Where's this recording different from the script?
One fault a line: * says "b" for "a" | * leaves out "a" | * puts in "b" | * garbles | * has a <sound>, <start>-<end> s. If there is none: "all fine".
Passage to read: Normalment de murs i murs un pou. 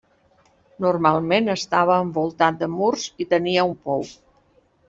* puts in "estava envoltat"
* says "tenia" for "murs"